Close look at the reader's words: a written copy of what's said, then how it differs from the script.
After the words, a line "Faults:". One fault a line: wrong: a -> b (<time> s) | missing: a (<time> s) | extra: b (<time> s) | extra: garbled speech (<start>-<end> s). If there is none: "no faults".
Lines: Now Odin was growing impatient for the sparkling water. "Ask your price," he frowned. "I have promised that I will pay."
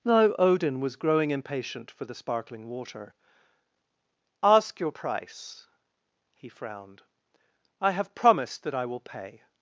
Now Odin was growing impatient for the sparkling water. "Ask your price," he frowned. "I have promised that I will pay."
Faults:
no faults